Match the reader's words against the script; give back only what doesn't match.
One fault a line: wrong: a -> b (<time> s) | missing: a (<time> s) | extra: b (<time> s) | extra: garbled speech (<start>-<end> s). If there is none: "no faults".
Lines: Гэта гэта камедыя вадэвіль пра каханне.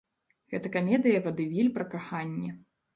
missing: гэта (0.7 s)